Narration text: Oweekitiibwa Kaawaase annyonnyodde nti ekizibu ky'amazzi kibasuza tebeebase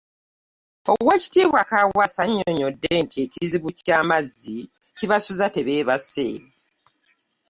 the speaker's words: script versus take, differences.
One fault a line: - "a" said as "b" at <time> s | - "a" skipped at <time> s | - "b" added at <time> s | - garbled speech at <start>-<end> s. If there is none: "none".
none